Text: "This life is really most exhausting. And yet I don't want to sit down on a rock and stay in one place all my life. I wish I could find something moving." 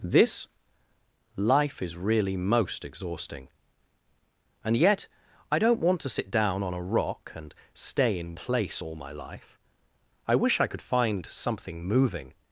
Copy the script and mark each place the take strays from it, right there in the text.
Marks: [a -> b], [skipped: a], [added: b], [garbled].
"This life is really most exhausting. And yet I don't want to sit down on a rock and stay in [skipped: one] place all my life. I wish I could find something moving."